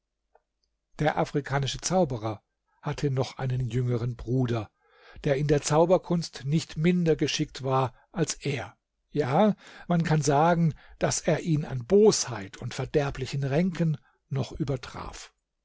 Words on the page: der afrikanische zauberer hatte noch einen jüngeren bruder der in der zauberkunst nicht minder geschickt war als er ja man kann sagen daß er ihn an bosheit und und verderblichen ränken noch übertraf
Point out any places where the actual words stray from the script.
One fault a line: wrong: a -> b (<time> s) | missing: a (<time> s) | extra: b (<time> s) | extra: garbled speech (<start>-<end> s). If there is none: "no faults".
missing: und (12.7 s)